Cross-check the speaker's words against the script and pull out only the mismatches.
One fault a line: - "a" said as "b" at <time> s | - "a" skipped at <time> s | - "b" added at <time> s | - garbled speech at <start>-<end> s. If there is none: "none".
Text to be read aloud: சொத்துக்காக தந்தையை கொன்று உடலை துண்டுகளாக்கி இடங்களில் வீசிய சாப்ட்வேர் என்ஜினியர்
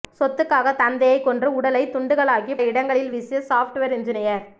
none